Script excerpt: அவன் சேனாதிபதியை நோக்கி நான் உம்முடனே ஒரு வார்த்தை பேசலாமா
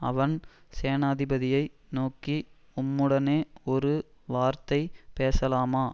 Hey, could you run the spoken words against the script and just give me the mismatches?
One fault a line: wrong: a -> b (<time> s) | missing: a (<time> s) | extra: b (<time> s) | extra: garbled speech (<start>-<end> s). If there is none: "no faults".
missing: நான் (2.4 s)